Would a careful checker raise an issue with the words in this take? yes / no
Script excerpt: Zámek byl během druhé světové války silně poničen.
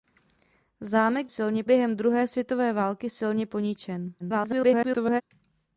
yes